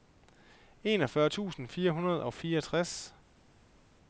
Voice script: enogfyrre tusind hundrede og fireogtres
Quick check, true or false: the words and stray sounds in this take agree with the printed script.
false